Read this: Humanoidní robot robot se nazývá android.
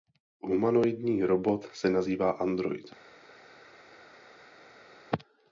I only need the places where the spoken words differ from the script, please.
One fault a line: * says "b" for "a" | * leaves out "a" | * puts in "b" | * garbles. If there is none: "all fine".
* leaves out "robot"